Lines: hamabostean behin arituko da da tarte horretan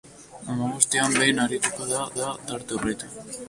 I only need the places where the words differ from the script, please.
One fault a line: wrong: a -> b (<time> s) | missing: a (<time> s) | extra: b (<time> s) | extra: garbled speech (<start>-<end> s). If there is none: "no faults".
no faults